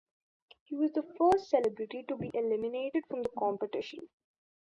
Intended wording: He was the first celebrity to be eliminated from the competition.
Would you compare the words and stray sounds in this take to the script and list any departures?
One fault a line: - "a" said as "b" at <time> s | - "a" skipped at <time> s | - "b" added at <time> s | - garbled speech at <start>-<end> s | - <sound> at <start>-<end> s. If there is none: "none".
none